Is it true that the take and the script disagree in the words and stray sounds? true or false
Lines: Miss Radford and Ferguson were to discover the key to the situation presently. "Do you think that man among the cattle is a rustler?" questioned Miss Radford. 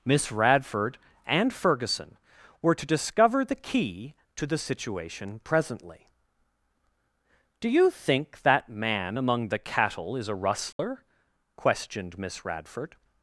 true